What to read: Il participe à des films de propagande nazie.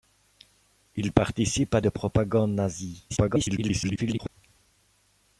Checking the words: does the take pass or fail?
fail